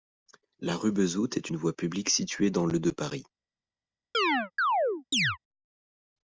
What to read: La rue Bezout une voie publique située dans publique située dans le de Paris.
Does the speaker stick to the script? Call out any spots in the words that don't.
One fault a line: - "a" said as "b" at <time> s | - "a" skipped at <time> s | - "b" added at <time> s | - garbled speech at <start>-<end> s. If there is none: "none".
- "est" added at 1.4 s
- "publique située dans" skipped at 2.7 s